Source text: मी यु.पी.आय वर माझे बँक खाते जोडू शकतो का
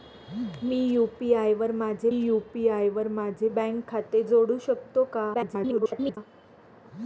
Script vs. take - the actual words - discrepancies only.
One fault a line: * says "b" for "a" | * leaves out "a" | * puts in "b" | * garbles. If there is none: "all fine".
* puts in "यु.पी.आय वर माझे"
* garbles